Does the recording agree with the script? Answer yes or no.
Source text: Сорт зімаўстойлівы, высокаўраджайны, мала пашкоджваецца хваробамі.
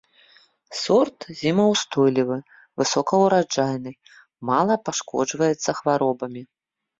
yes